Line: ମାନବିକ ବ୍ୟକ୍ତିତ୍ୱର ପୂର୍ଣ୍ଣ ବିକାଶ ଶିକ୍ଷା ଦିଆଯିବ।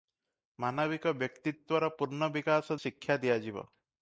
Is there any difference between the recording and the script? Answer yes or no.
no